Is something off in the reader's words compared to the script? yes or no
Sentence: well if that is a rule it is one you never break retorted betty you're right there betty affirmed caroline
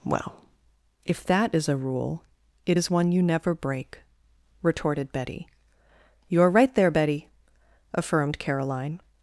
no